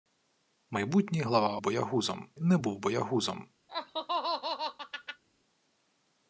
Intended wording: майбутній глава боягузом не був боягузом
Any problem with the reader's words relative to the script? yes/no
no